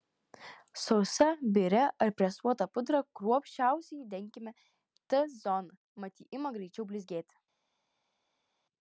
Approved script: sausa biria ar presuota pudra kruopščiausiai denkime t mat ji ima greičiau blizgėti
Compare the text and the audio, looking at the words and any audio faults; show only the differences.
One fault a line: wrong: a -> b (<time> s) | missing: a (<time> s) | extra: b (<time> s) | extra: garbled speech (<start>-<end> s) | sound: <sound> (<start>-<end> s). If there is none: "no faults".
extra: zoną (5.4 s)